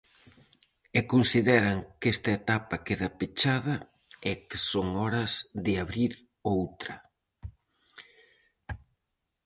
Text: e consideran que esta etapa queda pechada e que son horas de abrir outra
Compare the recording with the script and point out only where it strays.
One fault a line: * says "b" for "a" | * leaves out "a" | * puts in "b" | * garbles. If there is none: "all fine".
all fine